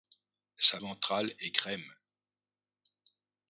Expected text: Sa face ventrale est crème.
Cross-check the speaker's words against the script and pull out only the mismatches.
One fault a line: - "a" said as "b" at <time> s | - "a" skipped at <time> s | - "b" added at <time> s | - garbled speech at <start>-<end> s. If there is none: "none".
- "face" skipped at 0.8 s